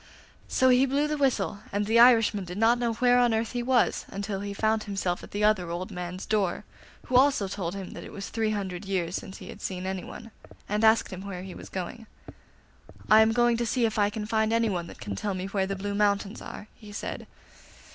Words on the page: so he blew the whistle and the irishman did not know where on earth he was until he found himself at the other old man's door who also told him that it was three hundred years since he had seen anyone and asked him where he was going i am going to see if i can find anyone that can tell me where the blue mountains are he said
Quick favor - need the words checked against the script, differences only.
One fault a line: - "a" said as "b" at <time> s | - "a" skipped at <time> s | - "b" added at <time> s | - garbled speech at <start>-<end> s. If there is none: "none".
none